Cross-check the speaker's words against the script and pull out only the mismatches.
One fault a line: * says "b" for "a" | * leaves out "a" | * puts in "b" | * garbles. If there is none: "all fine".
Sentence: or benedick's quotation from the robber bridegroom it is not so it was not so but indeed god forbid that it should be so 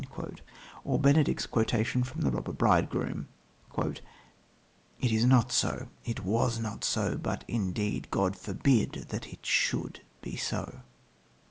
all fine